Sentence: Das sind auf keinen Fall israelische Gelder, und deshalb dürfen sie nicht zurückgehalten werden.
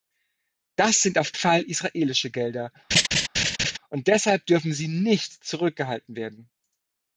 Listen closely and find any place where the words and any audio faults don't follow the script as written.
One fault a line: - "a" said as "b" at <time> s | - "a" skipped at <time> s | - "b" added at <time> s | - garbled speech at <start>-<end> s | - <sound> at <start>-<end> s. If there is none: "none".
- "keinen" skipped at 1.4 s
- laugh at 2.9-3.8 s